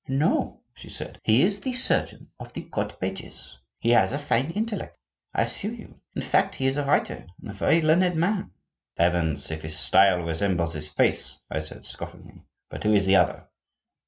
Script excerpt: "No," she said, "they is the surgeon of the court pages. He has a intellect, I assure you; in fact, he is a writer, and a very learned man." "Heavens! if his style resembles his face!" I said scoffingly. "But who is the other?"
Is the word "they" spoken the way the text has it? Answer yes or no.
no